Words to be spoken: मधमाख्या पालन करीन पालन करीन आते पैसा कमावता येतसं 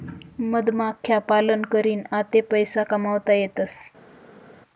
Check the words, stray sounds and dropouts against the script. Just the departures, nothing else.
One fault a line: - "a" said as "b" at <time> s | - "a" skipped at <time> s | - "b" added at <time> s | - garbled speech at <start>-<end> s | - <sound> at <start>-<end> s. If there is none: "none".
- "पालन करीन" skipped at 2.0 s